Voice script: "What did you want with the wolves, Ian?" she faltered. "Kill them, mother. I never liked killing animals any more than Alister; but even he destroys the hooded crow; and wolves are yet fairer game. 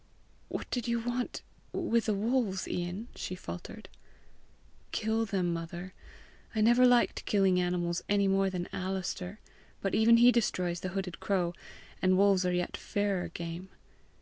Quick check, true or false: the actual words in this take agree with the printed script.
true